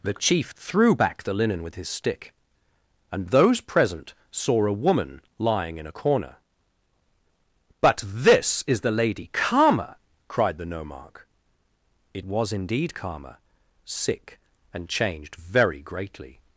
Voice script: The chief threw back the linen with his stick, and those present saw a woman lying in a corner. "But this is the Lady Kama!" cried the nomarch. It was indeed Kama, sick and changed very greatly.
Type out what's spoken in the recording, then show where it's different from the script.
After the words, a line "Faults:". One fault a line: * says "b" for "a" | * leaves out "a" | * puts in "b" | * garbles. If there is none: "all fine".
The chief threw back the linen with his stick, and those present saw a woman lying in a corner. "But this is the Lady Kama!" cried the nomarch. It was indeed Kama, sick and changed very greatly.
Faults:
all fine